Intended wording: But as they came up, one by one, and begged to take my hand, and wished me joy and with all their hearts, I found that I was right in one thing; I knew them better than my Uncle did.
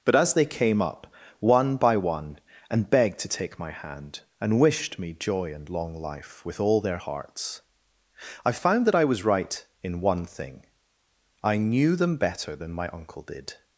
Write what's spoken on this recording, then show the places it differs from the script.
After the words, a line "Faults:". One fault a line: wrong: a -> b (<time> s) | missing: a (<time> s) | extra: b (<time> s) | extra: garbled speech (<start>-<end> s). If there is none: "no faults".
But as they came up, one by one, and begged to take my hand, and wished me joy and long life with all their hearts, I found that I was right in one thing; I knew them better than my Uncle did.
Faults:
extra: long life (5.7 s)